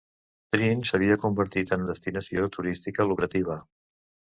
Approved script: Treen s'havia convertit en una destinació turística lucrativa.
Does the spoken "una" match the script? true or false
false